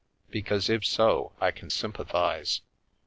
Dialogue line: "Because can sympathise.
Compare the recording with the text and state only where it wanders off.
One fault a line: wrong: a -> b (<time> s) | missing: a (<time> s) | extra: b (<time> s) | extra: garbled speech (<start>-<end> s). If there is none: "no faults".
extra: if so I (0.7 s)